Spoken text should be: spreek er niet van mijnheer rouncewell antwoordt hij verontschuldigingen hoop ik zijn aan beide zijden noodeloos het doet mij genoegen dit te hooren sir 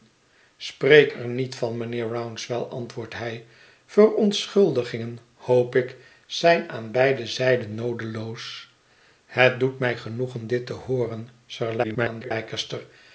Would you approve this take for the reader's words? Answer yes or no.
no